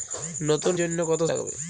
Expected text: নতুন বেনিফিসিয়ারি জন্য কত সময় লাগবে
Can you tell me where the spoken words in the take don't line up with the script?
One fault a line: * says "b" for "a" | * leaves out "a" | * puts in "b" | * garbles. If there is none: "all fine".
* leaves out "বেনিফিসিয়ারি"
* leaves out "সময়"